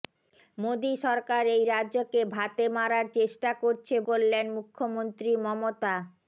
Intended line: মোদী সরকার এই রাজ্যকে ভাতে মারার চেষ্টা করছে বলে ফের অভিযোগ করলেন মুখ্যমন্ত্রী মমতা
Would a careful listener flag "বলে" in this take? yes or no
yes